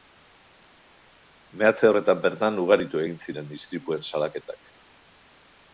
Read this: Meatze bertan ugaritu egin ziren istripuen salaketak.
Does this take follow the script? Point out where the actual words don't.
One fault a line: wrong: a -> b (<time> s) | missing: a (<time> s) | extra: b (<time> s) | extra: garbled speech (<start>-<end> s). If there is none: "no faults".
extra: horretan (1.9 s)